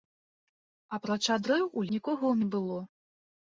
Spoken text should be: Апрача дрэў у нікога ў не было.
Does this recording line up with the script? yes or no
yes